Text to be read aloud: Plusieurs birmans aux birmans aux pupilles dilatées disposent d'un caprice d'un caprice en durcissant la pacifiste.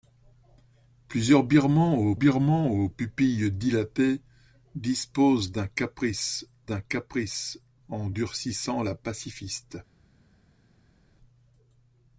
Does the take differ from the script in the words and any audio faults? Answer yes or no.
no